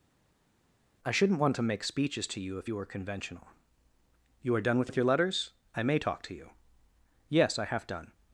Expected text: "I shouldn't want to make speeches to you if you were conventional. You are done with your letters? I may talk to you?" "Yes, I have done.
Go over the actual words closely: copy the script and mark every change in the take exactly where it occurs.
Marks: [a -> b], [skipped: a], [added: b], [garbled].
"I shouldn't want to make speeches to you if you were conventional. You are done with [added: with] your letters? I may talk to you?" "Yes, I have done.